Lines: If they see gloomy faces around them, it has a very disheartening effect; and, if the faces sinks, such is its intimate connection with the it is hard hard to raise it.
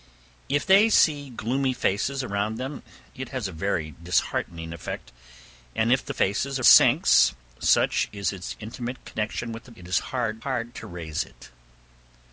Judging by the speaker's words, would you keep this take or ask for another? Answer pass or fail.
pass